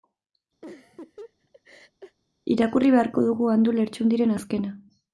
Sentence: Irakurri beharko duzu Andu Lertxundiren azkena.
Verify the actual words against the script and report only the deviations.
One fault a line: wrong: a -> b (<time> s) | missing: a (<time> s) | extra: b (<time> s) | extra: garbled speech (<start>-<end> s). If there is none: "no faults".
wrong: duzu -> dugu (3.3 s)